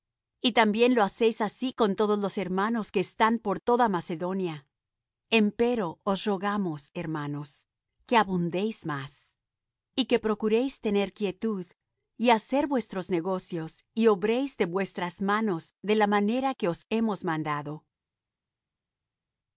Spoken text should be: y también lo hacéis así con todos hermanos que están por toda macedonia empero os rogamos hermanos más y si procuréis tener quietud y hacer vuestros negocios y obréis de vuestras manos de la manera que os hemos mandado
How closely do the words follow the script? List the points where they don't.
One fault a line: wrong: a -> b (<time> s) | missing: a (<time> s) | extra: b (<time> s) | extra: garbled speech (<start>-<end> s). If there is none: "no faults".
extra: los (2.2 s)
extra: que abundéis (8.0 s)
wrong: si -> que (10.1 s)